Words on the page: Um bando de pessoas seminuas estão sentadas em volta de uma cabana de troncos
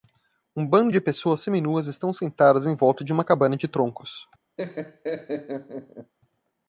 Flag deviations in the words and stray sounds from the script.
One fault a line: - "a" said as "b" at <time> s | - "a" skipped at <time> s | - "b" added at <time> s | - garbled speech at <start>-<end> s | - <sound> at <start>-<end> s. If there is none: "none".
- laugh at 4.6-6.1 s